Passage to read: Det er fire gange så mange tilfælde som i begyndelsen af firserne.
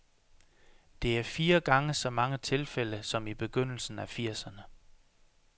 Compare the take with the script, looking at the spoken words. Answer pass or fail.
pass